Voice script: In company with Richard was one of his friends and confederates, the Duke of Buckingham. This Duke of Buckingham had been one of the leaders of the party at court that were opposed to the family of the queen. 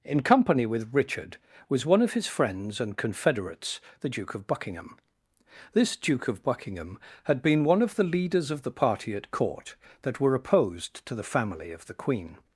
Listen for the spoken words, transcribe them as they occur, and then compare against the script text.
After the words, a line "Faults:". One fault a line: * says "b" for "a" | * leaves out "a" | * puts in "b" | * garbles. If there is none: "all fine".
In company with Richard was one of his friends and confederates, the Duke of Buckingham. This Duke of Buckingham had been one of the leaders of the party at court that were opposed to the family of the queen.
Faults:
all fine